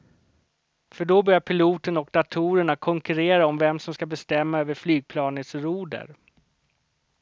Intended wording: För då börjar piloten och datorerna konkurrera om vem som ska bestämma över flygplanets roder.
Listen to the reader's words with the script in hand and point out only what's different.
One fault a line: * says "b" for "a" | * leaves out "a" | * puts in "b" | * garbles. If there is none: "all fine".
all fine